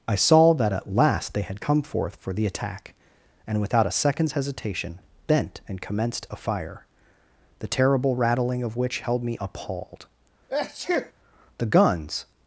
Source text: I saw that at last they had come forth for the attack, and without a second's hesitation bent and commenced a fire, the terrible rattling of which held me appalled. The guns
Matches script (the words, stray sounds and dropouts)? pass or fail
fail